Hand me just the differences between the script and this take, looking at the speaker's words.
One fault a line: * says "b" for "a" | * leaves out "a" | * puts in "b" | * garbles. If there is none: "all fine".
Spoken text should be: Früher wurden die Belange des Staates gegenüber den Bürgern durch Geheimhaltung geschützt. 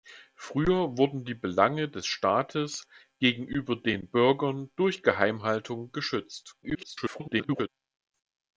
* garbles